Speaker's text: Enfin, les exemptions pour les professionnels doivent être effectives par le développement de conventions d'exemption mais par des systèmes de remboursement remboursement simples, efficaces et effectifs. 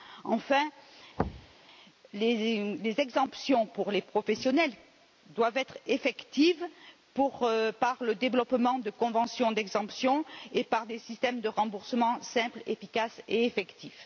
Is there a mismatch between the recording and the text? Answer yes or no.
yes